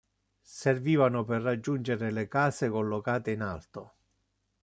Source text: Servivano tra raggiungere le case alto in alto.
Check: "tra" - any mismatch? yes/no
yes